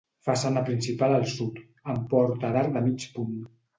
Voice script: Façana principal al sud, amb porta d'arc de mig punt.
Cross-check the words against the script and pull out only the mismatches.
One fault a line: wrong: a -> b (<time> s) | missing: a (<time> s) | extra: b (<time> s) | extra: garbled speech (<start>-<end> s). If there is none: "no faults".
no faults